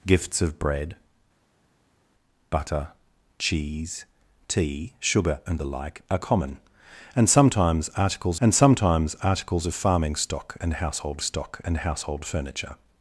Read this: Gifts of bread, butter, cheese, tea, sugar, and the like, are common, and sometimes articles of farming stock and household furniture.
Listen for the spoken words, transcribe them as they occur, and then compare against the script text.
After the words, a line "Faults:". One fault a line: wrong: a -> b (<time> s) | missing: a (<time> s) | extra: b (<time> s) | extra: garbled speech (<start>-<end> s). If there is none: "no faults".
Gifts of bread, butter, cheese, tea, sugar, and the like, are common, and sometimes articles and sometimes articles of farming stock and household stock and household furniture.
Faults:
extra: and sometimes articles (8.4 s)
extra: stock and household (11.2 s)